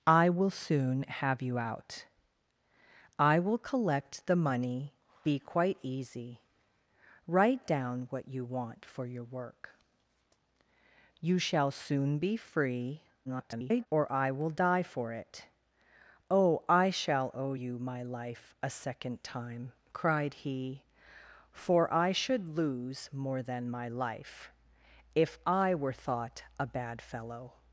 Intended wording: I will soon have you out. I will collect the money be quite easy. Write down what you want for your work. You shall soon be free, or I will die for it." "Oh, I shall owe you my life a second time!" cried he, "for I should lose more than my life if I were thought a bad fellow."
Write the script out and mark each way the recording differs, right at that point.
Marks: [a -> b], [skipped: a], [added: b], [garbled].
I will soon have you out. I will collect the money be quite easy. Write down what you want for your work. You shall soon be free, [garbled] or I will die for it." "Oh, I shall owe you my life a second time!" cried he, "for I should lose more than my life if I were thought a bad fellow."